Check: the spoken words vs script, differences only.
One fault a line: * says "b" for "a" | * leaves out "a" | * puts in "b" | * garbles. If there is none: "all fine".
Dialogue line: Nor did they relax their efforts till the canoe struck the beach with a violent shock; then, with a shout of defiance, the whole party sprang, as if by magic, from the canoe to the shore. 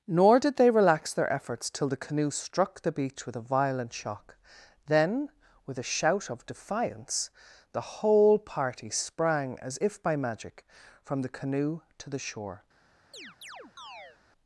all fine